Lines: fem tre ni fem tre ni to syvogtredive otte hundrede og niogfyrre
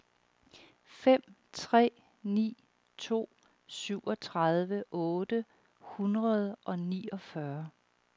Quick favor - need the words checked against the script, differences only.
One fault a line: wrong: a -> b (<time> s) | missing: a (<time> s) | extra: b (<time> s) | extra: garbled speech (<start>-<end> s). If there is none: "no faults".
missing: fem tre ni (2.6 s)